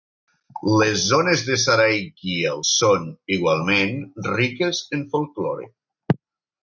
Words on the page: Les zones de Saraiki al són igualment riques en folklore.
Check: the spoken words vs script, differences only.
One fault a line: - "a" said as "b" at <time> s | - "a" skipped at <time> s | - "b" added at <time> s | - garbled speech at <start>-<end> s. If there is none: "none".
none